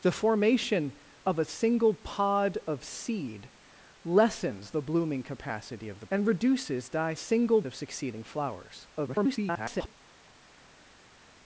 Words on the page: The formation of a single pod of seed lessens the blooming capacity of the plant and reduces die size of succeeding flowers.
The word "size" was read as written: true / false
false